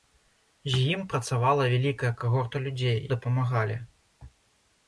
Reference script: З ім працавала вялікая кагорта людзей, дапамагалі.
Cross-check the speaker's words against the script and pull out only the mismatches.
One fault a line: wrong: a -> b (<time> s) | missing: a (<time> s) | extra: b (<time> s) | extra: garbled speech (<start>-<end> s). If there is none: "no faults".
no faults